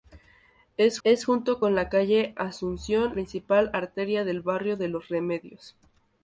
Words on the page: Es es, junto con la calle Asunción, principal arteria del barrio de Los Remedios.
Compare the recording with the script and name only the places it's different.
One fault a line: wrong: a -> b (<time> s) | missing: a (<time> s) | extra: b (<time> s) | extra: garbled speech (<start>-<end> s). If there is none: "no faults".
no faults